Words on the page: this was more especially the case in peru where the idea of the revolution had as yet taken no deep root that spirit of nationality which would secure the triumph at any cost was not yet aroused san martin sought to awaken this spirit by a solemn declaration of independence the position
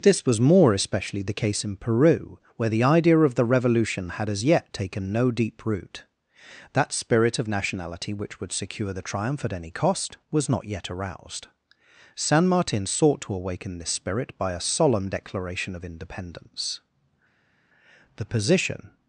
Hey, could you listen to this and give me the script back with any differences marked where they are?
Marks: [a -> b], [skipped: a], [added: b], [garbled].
this was more especially the case in peru where the idea of the revolution had as yet taken no deep root that spirit of nationality which would secure the triumph at any cost was not yet aroused san martin sought to awaken this spirit by a solemn declaration of independence the position